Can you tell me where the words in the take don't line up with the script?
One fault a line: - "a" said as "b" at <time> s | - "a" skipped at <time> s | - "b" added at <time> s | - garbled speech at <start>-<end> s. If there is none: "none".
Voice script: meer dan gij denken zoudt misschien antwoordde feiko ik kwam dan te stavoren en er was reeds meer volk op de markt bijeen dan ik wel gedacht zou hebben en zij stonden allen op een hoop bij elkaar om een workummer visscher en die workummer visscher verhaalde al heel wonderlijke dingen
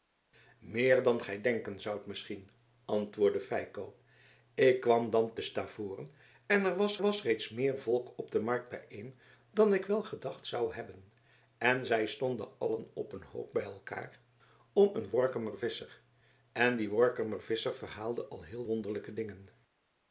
- "was" added at 7.0 s